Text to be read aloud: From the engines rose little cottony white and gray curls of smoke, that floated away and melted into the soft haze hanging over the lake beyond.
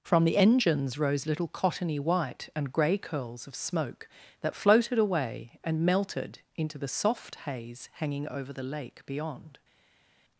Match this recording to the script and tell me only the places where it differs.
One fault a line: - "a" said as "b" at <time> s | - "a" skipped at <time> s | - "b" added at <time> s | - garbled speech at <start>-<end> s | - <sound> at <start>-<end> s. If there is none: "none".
none